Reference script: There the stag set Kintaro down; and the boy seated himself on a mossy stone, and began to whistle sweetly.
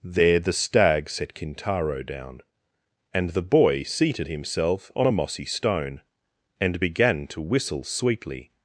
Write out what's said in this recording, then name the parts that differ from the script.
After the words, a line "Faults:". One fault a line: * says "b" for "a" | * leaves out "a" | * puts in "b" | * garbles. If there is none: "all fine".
There the stag set Kintaro down; and the boy seated himself on a mossy stone, and began to whistle sweetly.
Faults:
all fine